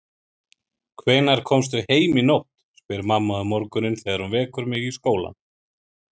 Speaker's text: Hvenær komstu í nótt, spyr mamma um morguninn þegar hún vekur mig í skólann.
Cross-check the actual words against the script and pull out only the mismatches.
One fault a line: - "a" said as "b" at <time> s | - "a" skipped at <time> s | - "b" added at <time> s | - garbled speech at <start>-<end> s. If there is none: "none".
- "heim" added at 1.9 s